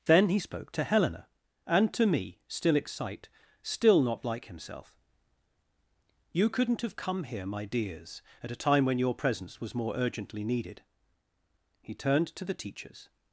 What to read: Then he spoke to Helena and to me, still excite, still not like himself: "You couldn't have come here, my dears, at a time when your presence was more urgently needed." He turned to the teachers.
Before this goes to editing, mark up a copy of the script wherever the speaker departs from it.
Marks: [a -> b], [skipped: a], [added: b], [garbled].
Then he spoke to Helena and to me, still excite, still not like himself: "You couldn't have come here, my dears, at a time when your presence was more urgently needed." He turned to the teachers.